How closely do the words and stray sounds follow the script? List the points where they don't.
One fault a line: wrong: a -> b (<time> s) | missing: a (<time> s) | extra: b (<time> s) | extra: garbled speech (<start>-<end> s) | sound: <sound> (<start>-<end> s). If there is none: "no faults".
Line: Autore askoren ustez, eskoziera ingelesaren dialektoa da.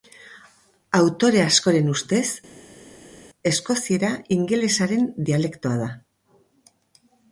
no faults